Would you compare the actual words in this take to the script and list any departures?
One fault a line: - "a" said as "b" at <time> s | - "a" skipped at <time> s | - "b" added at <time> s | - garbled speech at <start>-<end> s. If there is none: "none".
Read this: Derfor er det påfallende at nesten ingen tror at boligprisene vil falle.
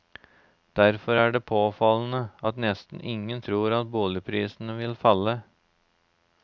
none